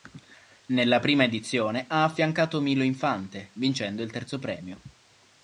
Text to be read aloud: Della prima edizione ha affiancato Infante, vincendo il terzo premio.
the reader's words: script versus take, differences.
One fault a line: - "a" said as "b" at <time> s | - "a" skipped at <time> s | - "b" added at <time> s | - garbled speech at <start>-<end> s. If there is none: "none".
- "Della" said as "Nella" at 0.7 s
- "Milo" added at 2.6 s